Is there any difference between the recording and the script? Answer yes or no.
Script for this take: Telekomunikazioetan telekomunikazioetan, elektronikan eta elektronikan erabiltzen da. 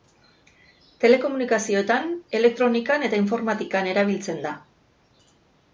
yes